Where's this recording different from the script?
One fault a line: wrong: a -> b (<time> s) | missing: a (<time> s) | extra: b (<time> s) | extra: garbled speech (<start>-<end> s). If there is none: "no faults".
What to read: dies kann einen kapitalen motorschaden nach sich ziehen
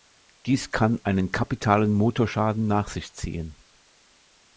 no faults